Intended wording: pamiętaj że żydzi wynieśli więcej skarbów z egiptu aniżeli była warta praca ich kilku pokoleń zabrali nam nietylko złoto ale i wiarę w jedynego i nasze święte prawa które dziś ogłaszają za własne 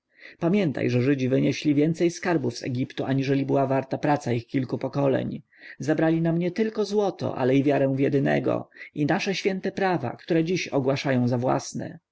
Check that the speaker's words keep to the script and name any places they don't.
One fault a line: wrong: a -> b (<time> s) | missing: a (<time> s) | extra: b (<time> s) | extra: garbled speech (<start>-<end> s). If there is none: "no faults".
no faults